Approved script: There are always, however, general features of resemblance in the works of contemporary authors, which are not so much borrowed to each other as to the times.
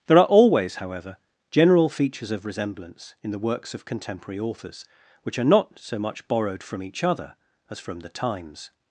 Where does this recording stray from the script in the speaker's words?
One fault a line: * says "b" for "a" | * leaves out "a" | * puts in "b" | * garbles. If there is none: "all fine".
* says "from" for "to"
* says "from" for "to"